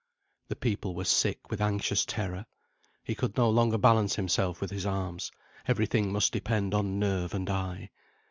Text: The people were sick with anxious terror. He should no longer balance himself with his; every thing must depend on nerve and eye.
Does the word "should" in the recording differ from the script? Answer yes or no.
yes